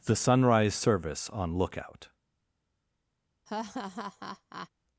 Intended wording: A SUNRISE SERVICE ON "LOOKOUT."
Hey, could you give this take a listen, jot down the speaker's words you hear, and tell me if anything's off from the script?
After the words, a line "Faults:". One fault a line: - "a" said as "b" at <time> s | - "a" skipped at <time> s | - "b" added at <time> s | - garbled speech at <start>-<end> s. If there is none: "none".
THE SUNRISE SERVICE ON "LOOKOUT."
Faults:
- "A" said as "THE" at 0.0 s